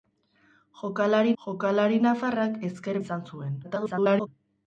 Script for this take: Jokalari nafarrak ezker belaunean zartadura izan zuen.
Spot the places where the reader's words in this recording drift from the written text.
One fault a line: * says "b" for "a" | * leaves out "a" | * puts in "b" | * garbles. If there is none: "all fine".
* puts in "jokalari"
* leaves out "belaunean zartadura"
* garbles